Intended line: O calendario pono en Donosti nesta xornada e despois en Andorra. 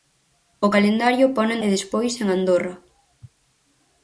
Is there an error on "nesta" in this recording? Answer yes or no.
yes